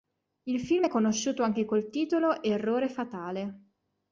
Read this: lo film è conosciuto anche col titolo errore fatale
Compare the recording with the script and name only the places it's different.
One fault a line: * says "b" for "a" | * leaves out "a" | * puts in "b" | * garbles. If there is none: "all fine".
* says "il" for "lo"